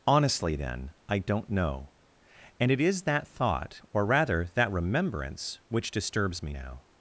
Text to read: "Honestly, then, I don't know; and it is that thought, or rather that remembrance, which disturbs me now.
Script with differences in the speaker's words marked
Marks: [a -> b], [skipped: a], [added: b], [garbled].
"Honestly, then, I don't know; and it is that thought, or rather that remembrance, which disturbs me now.